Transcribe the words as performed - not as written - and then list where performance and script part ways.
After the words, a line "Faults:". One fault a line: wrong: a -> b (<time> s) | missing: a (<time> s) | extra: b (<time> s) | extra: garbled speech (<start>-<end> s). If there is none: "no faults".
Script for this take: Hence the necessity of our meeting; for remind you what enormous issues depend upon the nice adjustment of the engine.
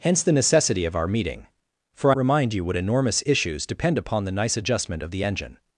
Hence the necessity of our meeting; for remind you what enormous issues depend upon the nice adjustment of the engine.
Faults:
no faults